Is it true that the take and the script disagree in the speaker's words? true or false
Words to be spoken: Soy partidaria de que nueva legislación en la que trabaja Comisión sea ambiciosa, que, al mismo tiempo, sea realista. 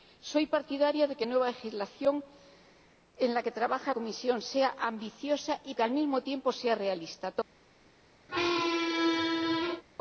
false